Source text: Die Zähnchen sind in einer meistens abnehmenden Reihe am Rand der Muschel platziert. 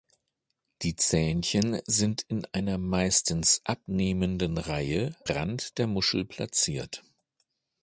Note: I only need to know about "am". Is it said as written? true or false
false